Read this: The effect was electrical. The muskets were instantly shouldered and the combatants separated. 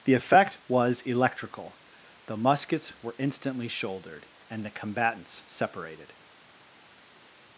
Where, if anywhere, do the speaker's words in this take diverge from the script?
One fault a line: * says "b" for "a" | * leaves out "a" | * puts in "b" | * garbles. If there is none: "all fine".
all fine